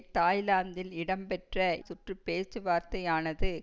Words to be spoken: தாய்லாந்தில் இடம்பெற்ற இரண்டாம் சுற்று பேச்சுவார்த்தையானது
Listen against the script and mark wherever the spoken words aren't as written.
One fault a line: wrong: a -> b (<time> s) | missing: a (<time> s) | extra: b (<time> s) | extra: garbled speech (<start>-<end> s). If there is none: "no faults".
missing: இரண்டாம் (1.6 s)